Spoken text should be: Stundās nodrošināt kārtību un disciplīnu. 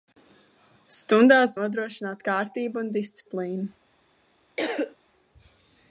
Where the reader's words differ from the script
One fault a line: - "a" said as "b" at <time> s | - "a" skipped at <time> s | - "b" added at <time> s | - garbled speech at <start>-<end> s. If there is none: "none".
none